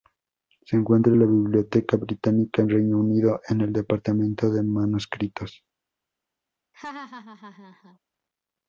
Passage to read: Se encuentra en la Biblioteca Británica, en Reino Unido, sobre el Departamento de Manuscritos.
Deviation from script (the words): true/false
true